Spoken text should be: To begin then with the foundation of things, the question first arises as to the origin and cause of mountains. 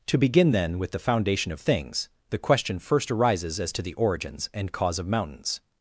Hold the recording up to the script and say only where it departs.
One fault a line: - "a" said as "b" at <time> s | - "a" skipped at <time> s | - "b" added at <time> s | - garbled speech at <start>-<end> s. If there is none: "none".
- "origin" said as "origins" at 3.9 s